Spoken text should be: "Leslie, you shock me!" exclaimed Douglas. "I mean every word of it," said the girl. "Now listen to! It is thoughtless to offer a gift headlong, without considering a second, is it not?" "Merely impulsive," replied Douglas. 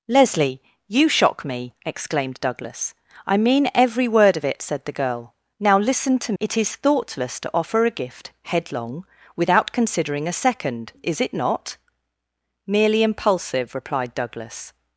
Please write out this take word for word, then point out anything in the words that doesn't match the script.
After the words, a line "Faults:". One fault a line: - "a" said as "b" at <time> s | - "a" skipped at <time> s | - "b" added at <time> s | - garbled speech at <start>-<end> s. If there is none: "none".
"Leslie, you shock me!" exclaimed Douglas. "I mean every word of it," said the girl. "Now listen to! It is thoughtless to offer a gift headlong, without considering a second, is it not?" "Merely impulsive," replied Douglas.
Faults:
none